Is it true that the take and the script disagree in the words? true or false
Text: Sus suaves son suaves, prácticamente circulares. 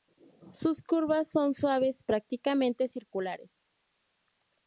true